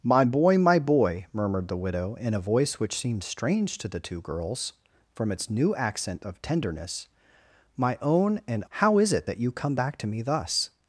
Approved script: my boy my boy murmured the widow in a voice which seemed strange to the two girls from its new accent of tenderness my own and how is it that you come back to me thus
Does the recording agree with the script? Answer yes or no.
yes